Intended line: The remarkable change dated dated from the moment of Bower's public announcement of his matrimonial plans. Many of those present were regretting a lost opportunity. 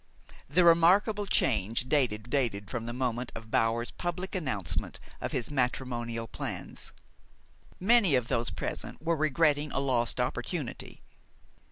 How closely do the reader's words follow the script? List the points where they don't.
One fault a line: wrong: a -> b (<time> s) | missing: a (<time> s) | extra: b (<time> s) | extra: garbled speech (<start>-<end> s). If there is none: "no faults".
no faults